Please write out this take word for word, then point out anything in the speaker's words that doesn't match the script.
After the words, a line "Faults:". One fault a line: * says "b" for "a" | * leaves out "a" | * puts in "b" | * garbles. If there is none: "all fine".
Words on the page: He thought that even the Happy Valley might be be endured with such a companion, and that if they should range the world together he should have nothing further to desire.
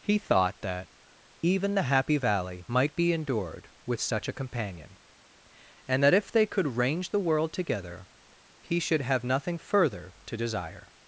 He thought that even the Happy Valley might be endured with such a companion, and that if they could range the world together he should have nothing further to desire.
Faults:
* leaves out "be"
* says "could" for "should"